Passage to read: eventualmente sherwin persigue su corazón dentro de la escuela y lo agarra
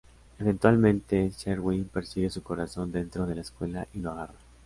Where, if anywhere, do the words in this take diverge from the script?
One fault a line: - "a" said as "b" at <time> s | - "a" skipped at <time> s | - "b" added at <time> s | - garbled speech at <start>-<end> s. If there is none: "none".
none